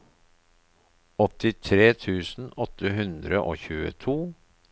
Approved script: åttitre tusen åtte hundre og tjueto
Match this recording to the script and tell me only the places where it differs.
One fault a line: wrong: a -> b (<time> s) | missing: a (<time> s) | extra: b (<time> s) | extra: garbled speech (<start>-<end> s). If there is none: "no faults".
no faults